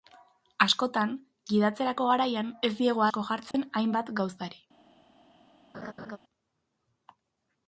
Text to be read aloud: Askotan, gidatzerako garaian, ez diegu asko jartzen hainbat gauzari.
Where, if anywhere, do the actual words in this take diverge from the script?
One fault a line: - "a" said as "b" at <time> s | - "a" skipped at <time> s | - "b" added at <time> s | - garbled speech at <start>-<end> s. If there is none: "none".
none